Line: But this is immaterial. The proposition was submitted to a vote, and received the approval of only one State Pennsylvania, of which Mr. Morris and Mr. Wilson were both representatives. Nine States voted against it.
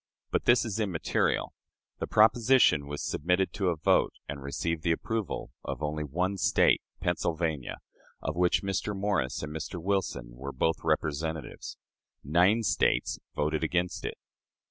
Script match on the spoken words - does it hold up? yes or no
yes